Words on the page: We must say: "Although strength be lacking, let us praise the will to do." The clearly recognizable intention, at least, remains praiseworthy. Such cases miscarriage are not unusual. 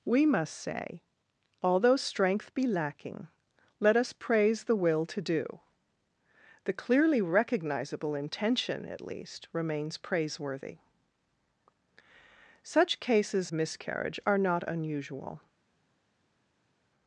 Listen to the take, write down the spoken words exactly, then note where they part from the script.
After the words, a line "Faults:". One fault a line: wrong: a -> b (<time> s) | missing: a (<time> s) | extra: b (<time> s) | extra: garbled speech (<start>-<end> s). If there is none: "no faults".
We must say: "Although strength be lacking, let us praise the will to do." The clearly recognizable intention, at least, remains praiseworthy. Such cases miscarriage are not unusual.
Faults:
no faults